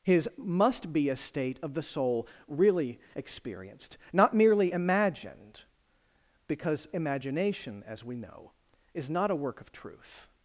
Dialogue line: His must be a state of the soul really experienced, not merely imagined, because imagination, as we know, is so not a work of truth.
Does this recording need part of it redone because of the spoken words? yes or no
yes